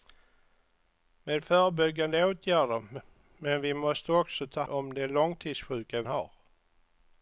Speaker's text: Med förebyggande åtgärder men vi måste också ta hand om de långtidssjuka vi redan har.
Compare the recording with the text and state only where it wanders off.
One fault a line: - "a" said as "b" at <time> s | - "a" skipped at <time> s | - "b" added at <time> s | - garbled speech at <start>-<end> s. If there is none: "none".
- "hand" skipped at 4.6 s
- "vi redan" skipped at 6.0 s